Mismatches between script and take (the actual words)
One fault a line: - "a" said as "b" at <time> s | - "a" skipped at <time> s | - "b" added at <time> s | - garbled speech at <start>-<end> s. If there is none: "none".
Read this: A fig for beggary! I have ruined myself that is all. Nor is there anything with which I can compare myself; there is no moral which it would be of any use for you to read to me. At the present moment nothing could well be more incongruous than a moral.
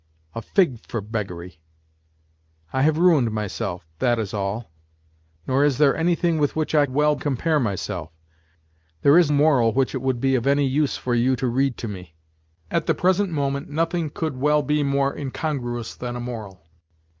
- "can" said as "well" at 6.9 s
- "no" skipped at 9.3 s